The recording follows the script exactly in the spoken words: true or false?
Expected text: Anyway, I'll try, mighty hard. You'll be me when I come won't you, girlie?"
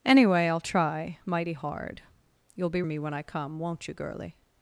true